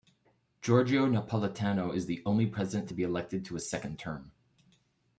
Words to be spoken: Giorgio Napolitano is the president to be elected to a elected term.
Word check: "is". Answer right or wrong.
right